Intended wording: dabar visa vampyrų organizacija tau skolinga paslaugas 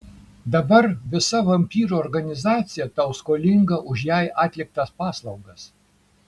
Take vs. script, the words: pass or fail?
fail